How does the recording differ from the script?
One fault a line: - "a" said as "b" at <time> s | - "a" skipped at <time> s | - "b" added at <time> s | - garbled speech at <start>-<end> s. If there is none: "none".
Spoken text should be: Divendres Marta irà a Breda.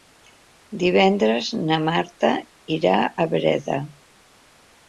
- "na" added at 1.7 s